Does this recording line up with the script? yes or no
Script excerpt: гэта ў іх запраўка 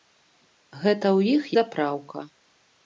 yes